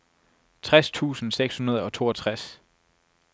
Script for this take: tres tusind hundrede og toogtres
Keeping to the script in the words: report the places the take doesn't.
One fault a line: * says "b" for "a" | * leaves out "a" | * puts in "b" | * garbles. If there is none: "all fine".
* puts in "seks"